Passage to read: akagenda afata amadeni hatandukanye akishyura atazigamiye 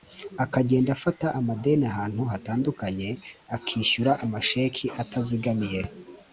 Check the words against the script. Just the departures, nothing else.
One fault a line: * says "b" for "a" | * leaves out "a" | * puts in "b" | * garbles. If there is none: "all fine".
* puts in "ahantu"
* puts in "amasheki"